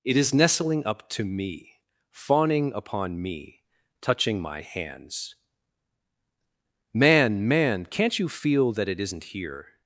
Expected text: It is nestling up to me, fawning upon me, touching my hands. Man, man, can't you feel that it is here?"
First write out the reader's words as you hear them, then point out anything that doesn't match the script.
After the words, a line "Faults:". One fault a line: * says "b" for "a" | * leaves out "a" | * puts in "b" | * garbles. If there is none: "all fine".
It is nestling up to me, fawning upon me, touching my hands. Man, man, can't you feel that it isn't here?"
Faults:
* says "isn't" for "is"